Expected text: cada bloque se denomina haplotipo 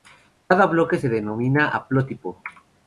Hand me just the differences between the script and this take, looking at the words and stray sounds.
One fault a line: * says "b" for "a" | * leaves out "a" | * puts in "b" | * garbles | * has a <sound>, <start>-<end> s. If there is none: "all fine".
all fine